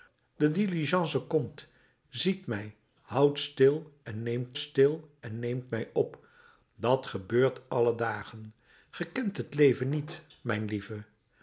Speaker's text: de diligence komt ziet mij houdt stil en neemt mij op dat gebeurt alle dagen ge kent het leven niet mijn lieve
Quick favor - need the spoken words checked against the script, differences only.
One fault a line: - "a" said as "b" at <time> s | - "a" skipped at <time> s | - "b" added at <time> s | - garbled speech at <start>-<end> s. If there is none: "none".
- "stil en neemt" added at 4.6 s